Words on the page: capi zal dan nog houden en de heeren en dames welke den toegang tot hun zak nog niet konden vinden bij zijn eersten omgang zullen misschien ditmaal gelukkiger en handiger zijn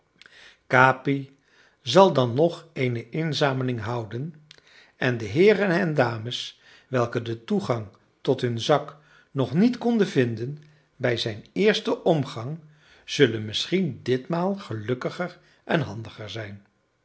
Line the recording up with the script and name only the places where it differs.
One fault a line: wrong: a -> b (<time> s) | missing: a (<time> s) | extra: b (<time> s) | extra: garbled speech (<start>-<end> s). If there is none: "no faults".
extra: eene inzameling (2.7 s)